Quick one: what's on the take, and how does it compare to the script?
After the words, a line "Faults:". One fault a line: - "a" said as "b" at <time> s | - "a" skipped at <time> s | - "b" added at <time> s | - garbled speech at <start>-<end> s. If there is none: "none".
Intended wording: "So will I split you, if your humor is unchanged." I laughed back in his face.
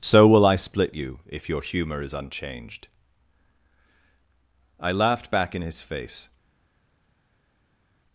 "So will I split you, if your humor is unchanged." I laughed back in his face.
Faults:
none